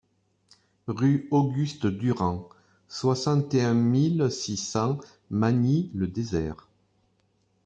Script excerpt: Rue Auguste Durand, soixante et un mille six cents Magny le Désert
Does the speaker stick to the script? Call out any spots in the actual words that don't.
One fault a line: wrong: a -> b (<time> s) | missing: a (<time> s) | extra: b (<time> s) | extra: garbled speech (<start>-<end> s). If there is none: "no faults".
no faults